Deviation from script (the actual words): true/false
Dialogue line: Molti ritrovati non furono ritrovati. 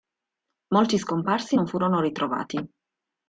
true